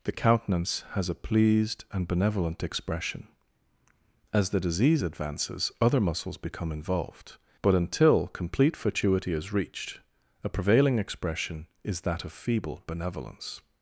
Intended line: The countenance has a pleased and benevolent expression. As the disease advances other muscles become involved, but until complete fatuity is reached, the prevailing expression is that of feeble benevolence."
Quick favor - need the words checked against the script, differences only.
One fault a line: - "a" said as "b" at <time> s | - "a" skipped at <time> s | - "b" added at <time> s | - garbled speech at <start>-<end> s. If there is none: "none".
- "the" said as "a" at 10.4 s